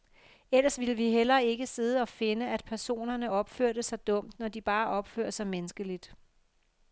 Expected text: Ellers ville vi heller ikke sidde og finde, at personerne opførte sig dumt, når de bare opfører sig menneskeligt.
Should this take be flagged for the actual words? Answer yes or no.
no